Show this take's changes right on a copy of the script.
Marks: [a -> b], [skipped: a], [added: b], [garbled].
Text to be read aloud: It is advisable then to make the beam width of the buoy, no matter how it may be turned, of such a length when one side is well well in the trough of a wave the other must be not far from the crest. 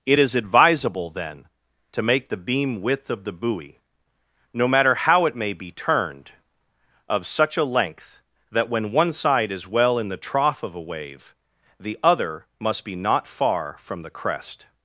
It is advisable then to make the beam width of the buoy, no matter how it may be turned, of such a length [added: that] when one side is well [skipped: well] in the trough of a wave the other must be not far from the crest.